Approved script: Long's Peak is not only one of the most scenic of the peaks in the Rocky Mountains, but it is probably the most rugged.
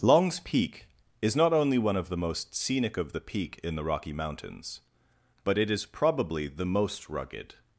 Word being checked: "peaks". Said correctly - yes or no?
no